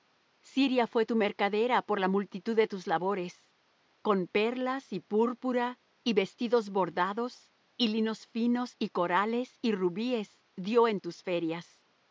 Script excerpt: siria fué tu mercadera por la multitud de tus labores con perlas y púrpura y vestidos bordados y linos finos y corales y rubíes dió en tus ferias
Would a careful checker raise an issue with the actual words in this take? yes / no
no